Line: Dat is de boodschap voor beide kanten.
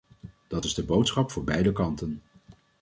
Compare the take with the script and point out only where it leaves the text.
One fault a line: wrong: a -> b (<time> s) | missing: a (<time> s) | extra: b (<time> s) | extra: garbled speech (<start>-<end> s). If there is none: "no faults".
no faults